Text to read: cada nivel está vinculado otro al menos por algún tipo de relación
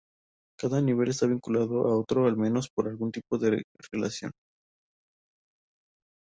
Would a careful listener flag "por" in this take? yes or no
no